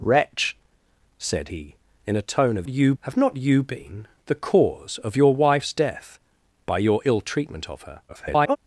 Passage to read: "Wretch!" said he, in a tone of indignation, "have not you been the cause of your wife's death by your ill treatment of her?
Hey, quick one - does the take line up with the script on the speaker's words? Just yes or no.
no